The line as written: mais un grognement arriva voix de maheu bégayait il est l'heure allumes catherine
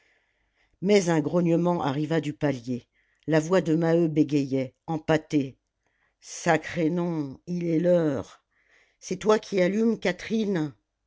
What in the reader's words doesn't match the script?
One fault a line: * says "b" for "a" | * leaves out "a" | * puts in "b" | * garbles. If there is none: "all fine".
* puts in "du palier la"
* puts in "empâtée sacré nom"
* puts in "c'est toi qui"